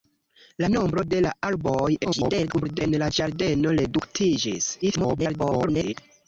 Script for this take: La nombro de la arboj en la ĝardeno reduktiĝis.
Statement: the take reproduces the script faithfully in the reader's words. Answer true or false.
false